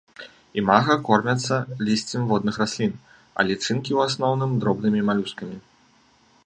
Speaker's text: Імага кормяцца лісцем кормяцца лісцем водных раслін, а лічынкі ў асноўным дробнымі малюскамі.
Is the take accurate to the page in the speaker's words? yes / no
no